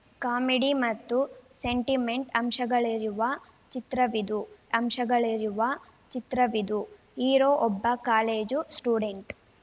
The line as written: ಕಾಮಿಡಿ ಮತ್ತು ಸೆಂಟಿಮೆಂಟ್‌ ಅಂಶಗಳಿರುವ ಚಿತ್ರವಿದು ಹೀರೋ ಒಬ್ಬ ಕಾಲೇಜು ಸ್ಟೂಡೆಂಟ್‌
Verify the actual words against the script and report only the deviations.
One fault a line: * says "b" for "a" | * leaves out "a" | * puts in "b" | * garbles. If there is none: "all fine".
* puts in "ಅಂಶಗಳಿರುವ ಚಿತ್ರವಿದು"